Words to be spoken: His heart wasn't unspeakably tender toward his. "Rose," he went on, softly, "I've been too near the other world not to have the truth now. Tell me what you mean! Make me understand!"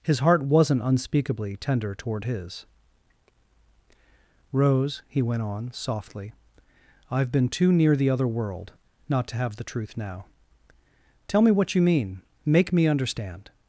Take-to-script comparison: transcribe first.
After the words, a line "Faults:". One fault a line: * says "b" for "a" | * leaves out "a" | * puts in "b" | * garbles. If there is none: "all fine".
His heart wasn't unspeakably tender toward his. "Rose," he went on, softly, "I've been too near the other world not to have the truth now. Tell me what you mean! Make me understand!"
Faults:
all fine